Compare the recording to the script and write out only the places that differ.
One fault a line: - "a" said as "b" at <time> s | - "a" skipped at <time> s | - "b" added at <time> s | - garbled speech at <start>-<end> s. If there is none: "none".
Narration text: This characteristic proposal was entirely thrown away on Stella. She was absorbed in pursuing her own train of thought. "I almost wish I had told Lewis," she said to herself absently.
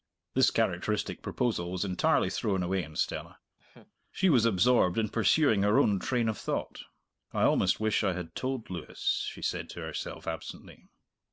none